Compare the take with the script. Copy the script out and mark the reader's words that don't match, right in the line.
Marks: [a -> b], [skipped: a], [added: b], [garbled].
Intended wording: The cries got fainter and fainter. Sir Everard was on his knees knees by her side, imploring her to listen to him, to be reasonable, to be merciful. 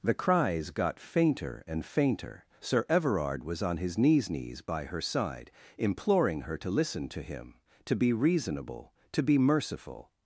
The cries got fainter and fainter. Sir Everard was on his knees knees by her side, imploring her to listen to him, to be reasonable, to be merciful.